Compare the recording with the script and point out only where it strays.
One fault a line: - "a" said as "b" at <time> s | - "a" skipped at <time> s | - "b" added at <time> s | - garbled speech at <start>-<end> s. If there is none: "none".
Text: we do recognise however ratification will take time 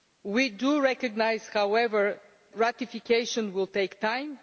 none